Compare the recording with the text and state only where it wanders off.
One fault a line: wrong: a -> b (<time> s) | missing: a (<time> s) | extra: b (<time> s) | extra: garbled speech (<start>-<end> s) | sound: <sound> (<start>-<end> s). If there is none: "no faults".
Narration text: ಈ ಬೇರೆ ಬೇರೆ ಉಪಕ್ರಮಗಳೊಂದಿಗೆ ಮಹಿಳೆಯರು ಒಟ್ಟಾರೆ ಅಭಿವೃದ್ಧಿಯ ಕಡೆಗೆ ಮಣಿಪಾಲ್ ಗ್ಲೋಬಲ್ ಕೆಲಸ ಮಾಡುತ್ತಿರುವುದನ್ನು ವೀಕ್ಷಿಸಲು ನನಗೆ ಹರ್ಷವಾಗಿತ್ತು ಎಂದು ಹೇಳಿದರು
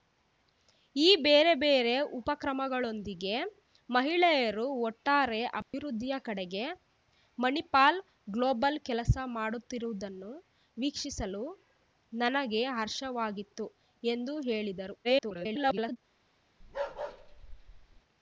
sound: dropout (5.6-5.7 s)
extra: garbled speech (15.0-16.0 s)
sound: bark (16.6-18.0 s)